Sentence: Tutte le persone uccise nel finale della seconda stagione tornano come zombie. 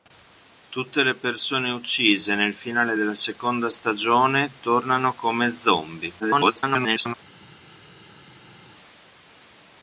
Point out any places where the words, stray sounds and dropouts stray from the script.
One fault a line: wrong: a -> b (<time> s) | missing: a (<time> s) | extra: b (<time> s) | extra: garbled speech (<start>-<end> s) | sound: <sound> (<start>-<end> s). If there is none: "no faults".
extra: garbled speech (6.2-7.1 s)